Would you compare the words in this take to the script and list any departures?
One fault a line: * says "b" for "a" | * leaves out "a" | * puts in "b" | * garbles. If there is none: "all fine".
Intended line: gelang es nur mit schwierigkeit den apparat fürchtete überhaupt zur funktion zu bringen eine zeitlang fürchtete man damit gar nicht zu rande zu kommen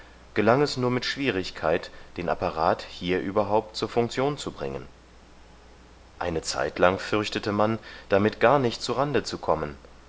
* says "hier" for "fürchtete"